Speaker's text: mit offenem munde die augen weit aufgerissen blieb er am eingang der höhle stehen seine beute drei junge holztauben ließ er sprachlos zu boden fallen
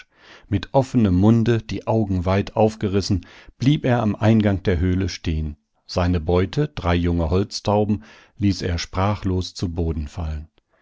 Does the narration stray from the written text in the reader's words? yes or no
no